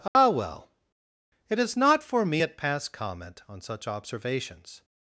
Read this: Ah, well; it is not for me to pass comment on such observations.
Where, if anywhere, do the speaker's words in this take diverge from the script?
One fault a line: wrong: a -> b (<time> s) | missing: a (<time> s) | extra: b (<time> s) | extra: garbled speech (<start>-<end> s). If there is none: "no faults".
wrong: to -> at (2.4 s)